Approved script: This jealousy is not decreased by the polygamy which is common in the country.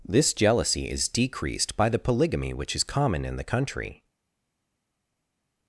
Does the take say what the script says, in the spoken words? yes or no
no